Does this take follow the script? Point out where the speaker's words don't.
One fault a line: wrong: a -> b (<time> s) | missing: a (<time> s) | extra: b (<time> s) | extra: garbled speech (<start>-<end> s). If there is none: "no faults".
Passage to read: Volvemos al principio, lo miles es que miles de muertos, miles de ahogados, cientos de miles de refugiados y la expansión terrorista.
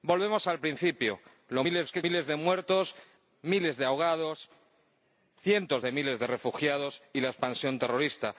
no faults